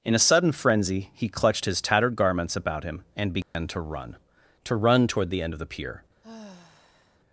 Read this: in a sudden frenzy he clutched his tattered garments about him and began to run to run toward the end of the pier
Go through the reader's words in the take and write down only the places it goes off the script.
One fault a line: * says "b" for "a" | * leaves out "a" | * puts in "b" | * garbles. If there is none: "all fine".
all fine